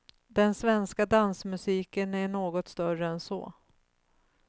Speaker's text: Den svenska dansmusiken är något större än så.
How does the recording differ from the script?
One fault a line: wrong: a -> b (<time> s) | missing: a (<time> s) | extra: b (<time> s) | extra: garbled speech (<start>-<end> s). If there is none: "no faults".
no faults